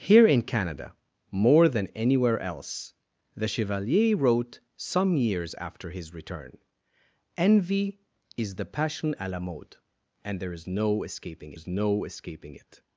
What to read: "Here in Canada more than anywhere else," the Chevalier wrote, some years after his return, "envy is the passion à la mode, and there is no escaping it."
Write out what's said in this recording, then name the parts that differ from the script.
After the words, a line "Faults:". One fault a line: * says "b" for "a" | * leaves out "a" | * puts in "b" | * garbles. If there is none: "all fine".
"Here in Canada more than anywhere else," the Chevalier wrote, some years after his return, "envy is the passion à la mode, and there is no escaping is no escaping it."
Faults:
* puts in "is no escaping"